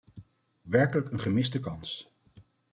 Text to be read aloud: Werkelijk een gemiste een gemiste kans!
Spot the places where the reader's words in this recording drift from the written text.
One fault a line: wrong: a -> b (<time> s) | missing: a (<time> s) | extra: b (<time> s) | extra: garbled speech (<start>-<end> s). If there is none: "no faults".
missing: een gemiste (1.6 s)